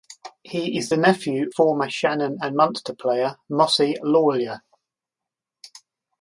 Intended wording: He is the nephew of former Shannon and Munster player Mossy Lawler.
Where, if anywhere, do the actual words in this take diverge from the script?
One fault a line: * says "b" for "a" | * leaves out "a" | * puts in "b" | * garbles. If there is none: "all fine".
* leaves out "of"